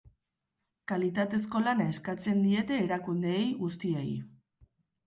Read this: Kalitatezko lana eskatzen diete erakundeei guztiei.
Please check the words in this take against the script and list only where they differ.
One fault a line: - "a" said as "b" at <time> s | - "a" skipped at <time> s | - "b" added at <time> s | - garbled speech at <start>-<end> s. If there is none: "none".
none